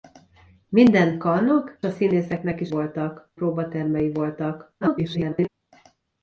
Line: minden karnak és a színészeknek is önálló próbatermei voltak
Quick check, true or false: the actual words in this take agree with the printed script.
false